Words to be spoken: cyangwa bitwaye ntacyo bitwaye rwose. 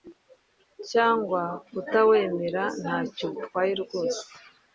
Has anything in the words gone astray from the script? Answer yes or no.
yes